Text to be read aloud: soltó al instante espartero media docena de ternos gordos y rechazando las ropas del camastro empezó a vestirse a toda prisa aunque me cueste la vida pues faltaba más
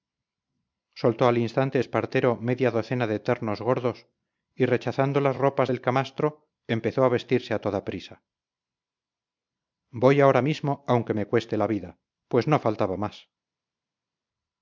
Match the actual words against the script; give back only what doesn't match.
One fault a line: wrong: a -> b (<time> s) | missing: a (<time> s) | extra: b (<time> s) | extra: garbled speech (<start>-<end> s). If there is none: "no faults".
extra: voy ahora mismo (9.9 s)
extra: no (12.5 s)